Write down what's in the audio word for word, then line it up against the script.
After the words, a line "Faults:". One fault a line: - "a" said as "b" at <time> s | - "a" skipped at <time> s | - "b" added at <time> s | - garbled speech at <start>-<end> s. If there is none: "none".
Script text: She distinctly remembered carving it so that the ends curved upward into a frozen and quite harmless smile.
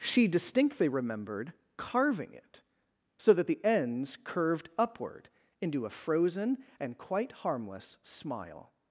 She distinctly remembered carving it so that the ends curved upward into a frozen and quite harmless smile.
Faults:
none